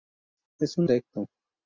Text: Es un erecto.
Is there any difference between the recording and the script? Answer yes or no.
no